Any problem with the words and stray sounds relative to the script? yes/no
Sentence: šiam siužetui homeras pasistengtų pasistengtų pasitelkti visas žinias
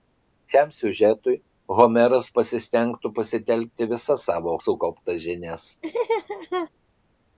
yes